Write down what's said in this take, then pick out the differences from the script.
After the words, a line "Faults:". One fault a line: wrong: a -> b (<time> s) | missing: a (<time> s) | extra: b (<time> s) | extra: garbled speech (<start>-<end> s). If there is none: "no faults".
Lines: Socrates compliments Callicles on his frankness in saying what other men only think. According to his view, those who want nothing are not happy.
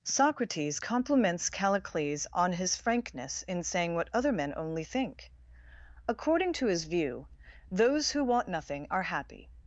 Socrates compliments Callicles on his frankness in saying what other men only think. According to his view, those who want nothing are happy.
Faults:
missing: not (9.0 s)